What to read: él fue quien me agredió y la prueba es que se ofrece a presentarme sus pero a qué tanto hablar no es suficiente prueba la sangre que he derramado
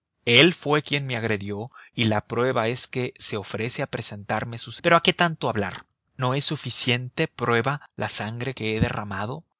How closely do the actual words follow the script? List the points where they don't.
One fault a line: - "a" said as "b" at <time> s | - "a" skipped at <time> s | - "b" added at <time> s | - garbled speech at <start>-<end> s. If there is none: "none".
none